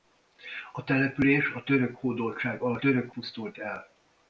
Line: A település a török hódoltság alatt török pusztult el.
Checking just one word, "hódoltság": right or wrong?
right